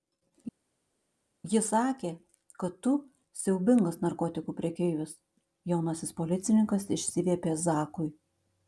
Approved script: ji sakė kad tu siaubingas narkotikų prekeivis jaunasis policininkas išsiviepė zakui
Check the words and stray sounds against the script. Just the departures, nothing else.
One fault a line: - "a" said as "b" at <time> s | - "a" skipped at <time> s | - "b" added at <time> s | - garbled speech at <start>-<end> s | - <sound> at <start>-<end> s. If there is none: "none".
none